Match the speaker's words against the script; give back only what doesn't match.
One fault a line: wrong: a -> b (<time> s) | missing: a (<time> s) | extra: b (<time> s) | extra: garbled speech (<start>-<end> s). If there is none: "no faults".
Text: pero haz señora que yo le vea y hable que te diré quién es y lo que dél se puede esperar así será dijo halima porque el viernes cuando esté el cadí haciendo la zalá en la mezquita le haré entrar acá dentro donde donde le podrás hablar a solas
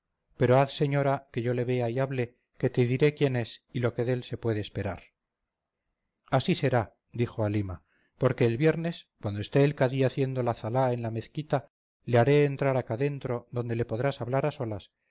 missing: donde (13.7 s)